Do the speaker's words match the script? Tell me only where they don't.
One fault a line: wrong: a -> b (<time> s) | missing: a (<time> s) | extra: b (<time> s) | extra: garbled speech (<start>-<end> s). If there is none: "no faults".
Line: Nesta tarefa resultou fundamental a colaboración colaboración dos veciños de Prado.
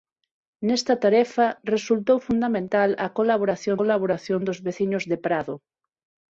no faults